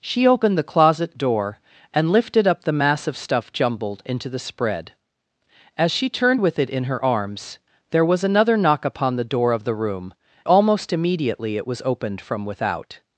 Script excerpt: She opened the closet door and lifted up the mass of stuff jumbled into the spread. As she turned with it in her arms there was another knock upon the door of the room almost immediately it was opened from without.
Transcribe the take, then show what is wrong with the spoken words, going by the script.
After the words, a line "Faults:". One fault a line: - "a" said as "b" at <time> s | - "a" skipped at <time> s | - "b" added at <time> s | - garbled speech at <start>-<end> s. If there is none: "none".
She opened the closet door and lifted up the mass of stuff jumbled into the spread. As she turned with it in her arms there was another knock upon the door of the room almost immediately it was opened from without.
Faults:
none